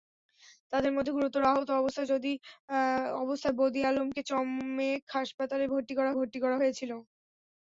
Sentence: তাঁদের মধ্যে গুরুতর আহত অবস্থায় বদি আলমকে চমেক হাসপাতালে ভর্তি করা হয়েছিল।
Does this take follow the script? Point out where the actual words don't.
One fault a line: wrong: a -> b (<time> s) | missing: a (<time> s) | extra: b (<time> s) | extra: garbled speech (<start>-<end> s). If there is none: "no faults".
extra: ভর্তি করা (6.2 s)